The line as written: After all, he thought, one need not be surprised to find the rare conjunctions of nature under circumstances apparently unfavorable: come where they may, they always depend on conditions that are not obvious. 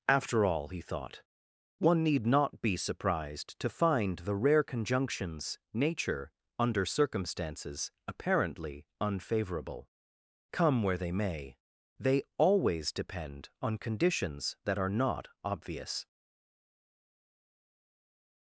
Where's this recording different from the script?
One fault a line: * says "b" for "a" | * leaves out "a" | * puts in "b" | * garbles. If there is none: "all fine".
* leaves out "of"